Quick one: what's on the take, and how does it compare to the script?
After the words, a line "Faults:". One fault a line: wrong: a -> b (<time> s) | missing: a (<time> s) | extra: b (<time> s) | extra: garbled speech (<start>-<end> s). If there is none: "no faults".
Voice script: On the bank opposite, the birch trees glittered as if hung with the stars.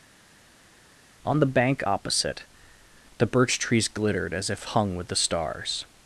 On the bank opposite, the birch trees glittered as if hung with the stars.
Faults:
no faults